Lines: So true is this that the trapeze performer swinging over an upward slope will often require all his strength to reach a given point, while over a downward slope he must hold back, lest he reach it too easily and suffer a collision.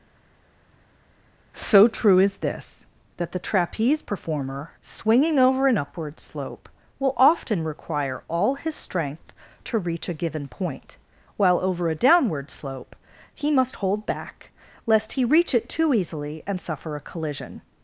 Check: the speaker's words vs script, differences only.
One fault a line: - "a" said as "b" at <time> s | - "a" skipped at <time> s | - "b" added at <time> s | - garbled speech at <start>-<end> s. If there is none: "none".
none